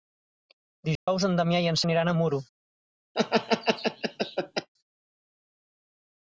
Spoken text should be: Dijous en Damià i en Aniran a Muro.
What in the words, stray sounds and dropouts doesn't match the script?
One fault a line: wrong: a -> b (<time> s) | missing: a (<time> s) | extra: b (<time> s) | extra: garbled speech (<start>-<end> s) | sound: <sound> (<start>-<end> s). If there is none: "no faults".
sound: dropout (1.0-1.1 s)
sound: laugh (3.1-4.7 s)